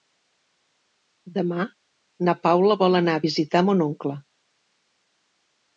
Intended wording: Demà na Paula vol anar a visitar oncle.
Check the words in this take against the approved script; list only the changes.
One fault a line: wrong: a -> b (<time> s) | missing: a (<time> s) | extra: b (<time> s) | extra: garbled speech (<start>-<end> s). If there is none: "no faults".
extra: mon (3.7 s)